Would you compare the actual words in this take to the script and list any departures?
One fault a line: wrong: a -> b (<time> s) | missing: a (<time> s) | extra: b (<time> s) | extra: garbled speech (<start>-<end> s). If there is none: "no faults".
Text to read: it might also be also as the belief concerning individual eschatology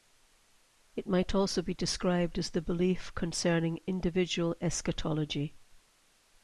wrong: also -> described (1.8 s)